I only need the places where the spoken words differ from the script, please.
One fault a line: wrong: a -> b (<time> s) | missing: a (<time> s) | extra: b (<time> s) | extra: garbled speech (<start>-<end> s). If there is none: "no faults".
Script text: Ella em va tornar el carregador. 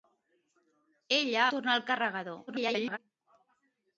missing: em va (1.4 s)
extra: garbled speech (2.5-3.0 s)